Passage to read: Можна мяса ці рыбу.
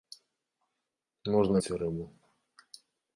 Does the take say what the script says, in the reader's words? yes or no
no